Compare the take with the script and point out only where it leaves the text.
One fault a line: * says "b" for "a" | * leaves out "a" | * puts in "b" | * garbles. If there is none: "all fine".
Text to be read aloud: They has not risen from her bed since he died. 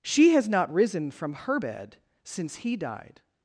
* says "She" for "They"